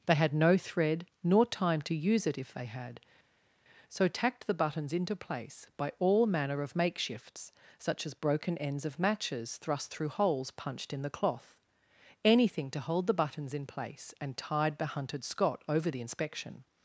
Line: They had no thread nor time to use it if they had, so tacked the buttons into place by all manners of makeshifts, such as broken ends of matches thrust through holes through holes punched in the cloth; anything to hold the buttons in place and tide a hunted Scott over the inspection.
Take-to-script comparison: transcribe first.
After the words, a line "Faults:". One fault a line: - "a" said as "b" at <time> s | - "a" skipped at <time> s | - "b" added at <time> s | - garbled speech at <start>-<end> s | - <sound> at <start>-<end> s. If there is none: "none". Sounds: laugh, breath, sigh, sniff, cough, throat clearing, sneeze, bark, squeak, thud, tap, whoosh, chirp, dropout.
They had no thread nor time to use it if they had, so tacked the buttons into place by all manner of makeshifts, such as broken ends of matches thrust through holes punched in the cloth; anything to hold the buttons in place and tide the hunted Scott over the inspection.
Faults:
- "manners" said as "manner" at 6.3 s
- "through holes" skipped at 10.5 s
- "a" said as "the" at 14.8 s